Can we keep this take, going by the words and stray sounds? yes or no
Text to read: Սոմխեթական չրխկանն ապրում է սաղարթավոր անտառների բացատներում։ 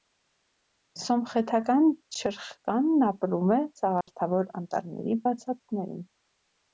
no